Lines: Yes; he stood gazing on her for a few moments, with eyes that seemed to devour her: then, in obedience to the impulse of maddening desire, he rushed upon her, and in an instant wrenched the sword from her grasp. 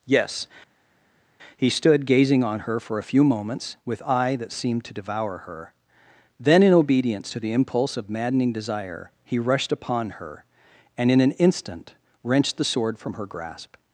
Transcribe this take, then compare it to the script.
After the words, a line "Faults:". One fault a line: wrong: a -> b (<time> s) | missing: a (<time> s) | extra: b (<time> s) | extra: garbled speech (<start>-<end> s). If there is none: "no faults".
Yes; he stood gazing on her for a few moments, with eye that seemed to devour her: then, in obedience to the impulse of maddening desire, he rushed upon her, and in an instant wrenched the sword from her grasp.
Faults:
wrong: eyes -> eye (4.0 s)